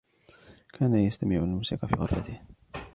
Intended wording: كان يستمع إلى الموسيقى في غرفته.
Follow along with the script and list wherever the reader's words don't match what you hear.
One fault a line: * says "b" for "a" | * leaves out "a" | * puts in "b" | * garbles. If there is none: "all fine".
all fine